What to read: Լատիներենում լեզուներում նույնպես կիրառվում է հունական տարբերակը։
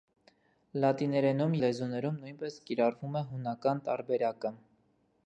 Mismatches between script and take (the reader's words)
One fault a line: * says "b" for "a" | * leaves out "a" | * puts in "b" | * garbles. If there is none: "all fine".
all fine